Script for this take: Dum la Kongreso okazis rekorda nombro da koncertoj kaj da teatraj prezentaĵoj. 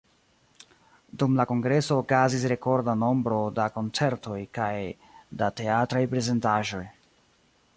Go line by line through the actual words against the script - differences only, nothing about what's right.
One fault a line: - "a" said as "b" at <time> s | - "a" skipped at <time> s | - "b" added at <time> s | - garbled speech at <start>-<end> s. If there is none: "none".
none